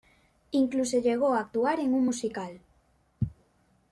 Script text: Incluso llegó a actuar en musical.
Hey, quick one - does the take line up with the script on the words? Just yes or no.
no